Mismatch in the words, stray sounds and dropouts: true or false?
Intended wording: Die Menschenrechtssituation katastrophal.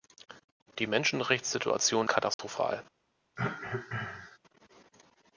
true